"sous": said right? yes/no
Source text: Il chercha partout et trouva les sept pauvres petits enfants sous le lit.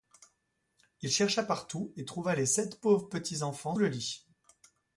no